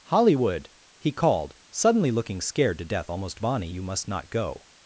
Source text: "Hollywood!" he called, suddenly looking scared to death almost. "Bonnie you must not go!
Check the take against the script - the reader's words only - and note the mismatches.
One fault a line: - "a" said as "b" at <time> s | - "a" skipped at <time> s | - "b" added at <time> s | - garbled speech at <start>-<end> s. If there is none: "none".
none